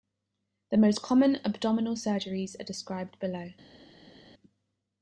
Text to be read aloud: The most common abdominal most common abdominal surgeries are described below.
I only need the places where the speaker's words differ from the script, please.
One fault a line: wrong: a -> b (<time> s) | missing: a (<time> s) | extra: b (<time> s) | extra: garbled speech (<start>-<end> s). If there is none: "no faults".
missing: most common abdominal (1.9 s)